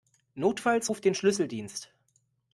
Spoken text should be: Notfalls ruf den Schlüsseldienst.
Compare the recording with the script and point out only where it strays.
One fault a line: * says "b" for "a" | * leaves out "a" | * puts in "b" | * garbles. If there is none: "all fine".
all fine